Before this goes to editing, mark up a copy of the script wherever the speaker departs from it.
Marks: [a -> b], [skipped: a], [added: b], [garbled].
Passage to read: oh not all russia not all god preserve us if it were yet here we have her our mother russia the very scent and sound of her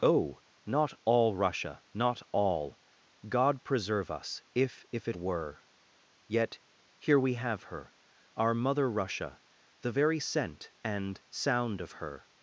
oh not all russia not all god preserve us if [added: if] it were yet here we have her our mother russia the very scent and sound of her